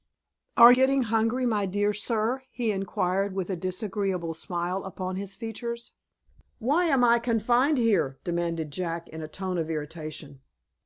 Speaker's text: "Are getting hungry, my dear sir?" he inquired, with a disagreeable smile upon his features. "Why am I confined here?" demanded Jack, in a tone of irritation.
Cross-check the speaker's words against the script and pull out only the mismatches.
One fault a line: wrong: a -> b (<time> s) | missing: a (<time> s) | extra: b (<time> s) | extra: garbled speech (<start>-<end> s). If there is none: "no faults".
no faults